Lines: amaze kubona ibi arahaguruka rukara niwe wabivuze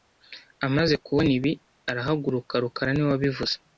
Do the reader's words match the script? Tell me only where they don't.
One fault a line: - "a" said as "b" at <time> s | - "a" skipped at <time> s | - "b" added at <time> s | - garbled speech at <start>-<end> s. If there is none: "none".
none